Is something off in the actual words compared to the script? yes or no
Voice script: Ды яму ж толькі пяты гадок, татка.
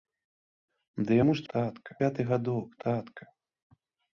yes